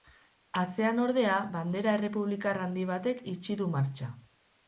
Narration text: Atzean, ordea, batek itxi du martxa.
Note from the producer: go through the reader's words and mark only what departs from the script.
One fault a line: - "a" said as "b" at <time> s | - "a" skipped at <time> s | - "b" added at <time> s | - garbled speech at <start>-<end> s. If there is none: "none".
- "bandera errepublikar handi" added at 1.5 s